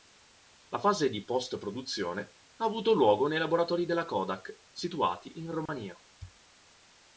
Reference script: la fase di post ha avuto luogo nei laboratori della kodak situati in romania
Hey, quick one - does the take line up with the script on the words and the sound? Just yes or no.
no